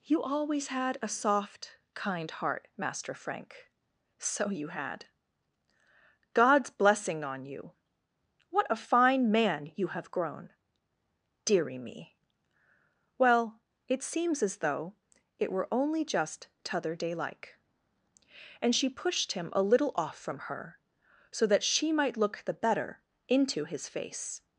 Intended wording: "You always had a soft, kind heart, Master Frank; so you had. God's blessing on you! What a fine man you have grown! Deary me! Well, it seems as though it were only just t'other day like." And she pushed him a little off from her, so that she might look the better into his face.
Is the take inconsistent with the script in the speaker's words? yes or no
no